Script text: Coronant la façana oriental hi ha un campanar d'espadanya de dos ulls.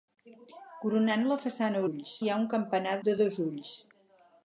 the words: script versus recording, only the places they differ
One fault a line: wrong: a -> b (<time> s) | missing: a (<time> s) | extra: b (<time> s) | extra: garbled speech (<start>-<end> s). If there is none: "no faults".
wrong: oriental -> ulls (1.9 s)
missing: d'espadanya (3.0 s)